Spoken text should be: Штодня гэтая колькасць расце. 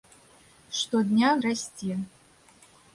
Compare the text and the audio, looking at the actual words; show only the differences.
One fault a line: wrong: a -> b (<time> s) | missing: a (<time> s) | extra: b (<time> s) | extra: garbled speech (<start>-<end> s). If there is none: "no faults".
missing: гэтая колькасць (1.3 s)